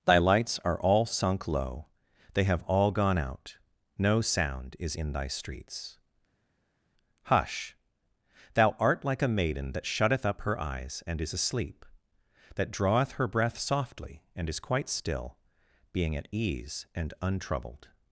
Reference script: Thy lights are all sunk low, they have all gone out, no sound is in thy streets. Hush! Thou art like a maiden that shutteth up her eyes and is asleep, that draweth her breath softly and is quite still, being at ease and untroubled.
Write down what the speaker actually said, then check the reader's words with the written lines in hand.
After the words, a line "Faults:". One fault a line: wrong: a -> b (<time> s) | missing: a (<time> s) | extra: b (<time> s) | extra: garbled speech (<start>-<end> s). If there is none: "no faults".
Thy lights are all sunk low, they have all gone out, no sound is in thy streets. Hush! Thou art like a maiden that shutteth up her eyes and is asleep, that draweth her breath softly and is quite still, being at ease and untroubled.
Faults:
no faults